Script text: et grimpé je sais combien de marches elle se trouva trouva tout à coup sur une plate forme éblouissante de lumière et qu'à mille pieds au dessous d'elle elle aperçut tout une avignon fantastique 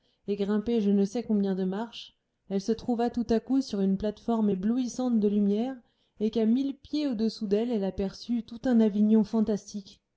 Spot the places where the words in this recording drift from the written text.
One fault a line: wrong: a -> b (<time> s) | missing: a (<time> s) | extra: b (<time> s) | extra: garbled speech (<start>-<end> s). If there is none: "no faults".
extra: ne (0.9 s)
missing: trouva (3.1 s)
wrong: une -> un (8.7 s)